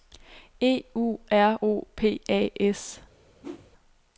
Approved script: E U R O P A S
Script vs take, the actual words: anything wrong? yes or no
no